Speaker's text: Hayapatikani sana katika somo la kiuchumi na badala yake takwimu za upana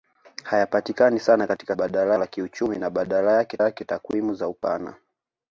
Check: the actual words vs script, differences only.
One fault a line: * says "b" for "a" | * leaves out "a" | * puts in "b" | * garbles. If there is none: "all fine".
* says "badala" for "somo"
* puts in "yake"